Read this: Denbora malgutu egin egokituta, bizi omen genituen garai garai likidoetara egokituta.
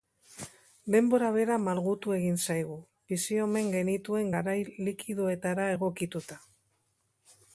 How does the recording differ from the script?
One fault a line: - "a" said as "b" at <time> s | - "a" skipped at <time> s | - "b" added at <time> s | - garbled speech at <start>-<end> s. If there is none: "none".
- "bera" added at 1.4 s
- "egokituta" said as "zaigu" at 2.5 s
- "garai" skipped at 4.6 s